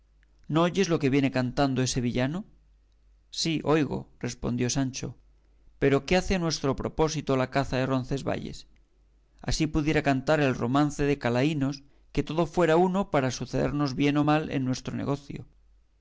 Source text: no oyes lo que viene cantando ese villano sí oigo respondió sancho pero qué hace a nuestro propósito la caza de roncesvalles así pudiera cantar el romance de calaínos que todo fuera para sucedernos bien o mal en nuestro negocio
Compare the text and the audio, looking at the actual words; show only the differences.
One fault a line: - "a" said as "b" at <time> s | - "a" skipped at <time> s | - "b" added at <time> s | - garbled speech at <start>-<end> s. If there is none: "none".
- "uno" added at 12.8 s